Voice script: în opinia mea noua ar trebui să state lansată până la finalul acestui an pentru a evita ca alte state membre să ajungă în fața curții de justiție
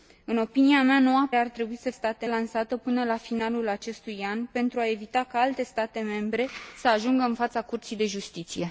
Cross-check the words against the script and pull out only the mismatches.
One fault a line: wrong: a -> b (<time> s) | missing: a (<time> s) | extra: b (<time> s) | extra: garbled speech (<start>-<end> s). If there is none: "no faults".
no faults